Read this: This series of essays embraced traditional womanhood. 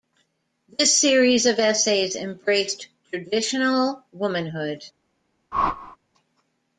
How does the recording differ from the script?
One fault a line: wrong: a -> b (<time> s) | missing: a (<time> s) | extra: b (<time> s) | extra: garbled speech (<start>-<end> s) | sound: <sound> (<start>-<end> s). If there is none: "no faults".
sound: whoosh (5.5-6.0 s)